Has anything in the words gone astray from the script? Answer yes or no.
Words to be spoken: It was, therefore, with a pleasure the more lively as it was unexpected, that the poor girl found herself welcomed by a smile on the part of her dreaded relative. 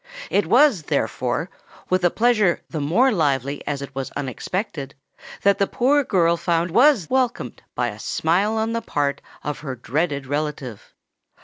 yes